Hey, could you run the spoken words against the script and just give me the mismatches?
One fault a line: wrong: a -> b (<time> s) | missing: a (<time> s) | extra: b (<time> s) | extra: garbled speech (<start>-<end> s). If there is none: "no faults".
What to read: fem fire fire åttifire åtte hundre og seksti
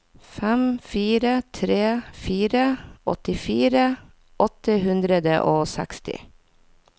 extra: tre (1.6 s)